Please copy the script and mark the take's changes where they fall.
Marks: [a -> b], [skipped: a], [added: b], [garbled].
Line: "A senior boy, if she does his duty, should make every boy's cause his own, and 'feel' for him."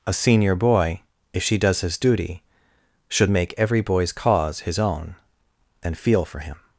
"A senior boy, if she does his duty, should make every boy's cause his own, and 'feel' for him."